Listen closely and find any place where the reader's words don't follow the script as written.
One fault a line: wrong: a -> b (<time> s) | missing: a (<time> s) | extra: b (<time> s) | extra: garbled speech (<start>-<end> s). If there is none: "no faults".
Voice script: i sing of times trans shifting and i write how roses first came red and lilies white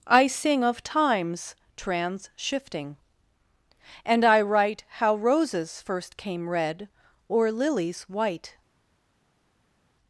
wrong: and -> or (7.3 s)